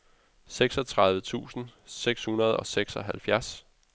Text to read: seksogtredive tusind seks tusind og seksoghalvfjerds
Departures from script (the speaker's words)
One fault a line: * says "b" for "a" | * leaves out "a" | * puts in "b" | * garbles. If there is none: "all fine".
* says "hundrede" for "tusind"